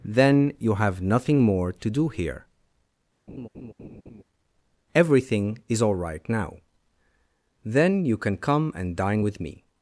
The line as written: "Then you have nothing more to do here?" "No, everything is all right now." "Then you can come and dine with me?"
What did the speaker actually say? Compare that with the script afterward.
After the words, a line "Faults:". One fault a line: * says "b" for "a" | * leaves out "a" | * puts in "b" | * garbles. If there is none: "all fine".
"Then you have nothing more to do here?" "Everything is all right now." "Then you can come and dine with me?"
Faults:
* leaves out "No"